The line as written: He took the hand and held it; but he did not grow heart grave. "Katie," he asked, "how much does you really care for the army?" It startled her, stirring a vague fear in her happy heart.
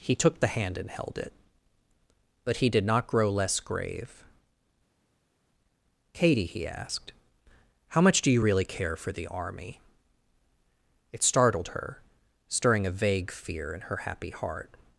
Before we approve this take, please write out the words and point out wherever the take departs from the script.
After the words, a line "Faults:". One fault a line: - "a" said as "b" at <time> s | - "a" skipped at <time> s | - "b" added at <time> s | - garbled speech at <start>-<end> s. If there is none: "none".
He took the hand and held it; but he did not grow less grave. "Katie," he asked, "how much do you really care for the army?" It startled her, stirring a vague fear in her happy heart.
Faults:
- "heart" said as "less" at 3.3 s
- "does" said as "do" at 8.2 s